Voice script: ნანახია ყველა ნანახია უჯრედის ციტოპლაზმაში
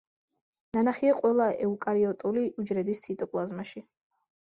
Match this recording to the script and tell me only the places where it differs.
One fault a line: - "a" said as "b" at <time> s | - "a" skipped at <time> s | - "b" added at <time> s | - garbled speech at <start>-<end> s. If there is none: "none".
- "ნანახია" said as "ეუკარიოტული" at 1.6 s